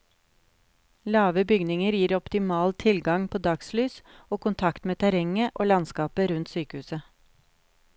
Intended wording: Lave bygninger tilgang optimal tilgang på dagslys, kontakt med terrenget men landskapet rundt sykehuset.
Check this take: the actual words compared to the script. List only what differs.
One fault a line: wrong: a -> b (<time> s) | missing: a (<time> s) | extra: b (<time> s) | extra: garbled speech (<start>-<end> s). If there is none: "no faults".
wrong: tilgang -> gir (2.0 s)
extra: og (4.3 s)
wrong: men -> og (5.5 s)